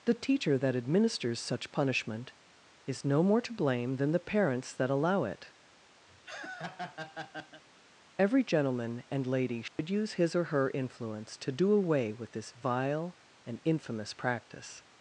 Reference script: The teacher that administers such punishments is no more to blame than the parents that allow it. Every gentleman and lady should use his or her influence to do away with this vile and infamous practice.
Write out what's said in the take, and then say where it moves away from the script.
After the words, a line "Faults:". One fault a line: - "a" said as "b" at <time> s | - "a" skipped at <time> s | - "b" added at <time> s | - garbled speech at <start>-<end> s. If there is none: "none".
The teacher that administers such punishment is no more to blame than the parents that allow it. Every gentleman and lady should use his or her influence to do away with this vile and infamous practice.
Faults:
- "punishments" said as "punishment" at 1.7 s